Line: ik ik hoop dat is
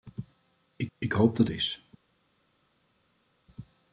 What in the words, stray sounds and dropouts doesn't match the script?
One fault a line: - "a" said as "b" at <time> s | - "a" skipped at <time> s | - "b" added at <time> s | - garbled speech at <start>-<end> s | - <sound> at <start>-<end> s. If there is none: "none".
none